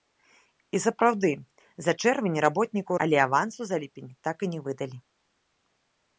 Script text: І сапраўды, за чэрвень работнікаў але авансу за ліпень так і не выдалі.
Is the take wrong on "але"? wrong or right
right